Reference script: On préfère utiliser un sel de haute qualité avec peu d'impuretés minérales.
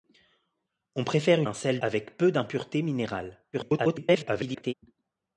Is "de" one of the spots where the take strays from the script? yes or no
yes